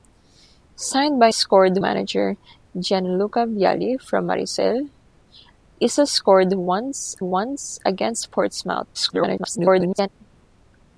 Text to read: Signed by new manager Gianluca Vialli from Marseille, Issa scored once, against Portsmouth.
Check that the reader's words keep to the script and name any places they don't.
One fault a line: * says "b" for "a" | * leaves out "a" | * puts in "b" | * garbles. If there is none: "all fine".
* says "scored" for "new"
* puts in "once"
* garbles